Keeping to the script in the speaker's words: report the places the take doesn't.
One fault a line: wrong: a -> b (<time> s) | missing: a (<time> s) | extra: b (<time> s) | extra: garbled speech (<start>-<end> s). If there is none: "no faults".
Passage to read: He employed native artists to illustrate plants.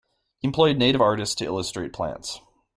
no faults